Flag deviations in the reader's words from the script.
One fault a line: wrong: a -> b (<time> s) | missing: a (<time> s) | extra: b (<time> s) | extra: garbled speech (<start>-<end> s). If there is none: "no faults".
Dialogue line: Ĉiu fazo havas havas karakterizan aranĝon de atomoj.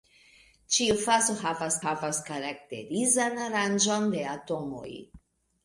no faults